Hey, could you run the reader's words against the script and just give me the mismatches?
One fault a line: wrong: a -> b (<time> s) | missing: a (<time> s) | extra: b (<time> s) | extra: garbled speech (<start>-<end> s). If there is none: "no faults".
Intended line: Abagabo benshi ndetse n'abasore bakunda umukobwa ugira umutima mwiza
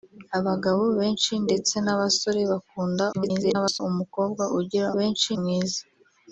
extra: garbled speech (3.1-3.8 s)
wrong: umutima -> benshi (5.0 s)